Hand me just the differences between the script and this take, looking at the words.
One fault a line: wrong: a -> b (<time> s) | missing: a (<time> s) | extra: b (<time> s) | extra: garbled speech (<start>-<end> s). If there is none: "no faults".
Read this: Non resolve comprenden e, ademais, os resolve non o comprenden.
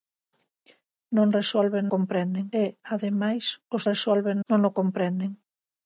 no faults